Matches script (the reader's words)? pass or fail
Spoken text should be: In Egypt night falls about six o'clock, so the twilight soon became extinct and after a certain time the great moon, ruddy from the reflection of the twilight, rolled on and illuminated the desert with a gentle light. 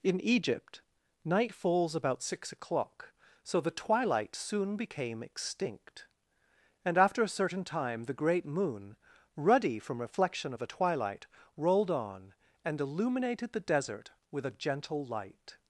fail